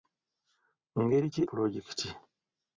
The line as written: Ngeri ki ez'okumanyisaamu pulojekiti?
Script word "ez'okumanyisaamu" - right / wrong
wrong